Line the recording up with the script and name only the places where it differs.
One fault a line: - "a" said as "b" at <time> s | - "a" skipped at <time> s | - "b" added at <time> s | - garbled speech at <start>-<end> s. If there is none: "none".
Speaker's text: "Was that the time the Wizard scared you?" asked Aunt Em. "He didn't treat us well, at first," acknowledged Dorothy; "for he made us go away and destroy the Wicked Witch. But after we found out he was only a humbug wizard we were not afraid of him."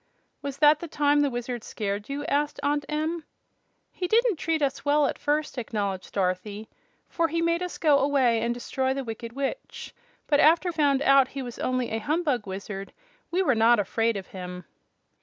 - "we" skipped at 10.7 s